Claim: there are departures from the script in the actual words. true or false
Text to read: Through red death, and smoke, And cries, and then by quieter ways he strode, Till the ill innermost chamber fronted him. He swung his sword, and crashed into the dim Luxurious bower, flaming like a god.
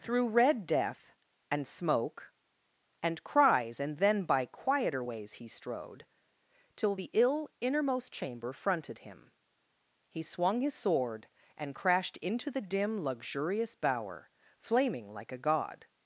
false